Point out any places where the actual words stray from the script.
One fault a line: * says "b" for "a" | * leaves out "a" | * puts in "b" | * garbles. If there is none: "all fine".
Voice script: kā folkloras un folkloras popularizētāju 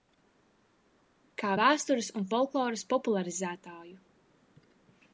* says "vēstures" for "folkloras"